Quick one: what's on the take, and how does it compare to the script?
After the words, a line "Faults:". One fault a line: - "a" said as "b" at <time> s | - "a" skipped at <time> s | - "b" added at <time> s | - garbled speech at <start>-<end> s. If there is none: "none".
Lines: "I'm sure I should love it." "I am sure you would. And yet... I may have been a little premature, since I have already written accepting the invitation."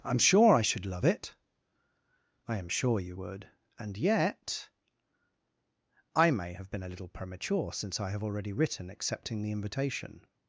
"I'm sure I should love it." "I am sure you would. And yet... I may have been a little premature, since I have already written accepting the invitation."
Faults:
none